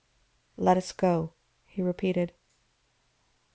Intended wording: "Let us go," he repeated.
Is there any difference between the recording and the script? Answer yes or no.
no